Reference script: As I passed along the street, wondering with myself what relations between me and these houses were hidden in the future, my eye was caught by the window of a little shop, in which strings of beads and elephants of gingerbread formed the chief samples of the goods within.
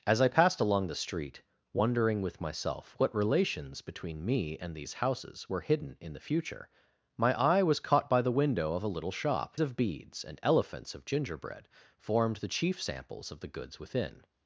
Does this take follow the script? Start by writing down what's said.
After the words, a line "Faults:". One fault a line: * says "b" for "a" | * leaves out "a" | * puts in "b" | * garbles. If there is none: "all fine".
As I passed along the street, wondering with myself what relations between me and these houses were hidden in the future, my eye was caught by the window of a little shop, of beads and elephants of gingerbread formed the chief samples of the goods within.
Faults:
* leaves out "in which strings"